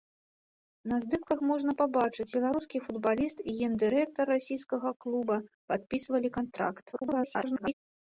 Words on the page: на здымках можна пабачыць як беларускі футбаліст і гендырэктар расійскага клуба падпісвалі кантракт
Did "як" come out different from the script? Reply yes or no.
yes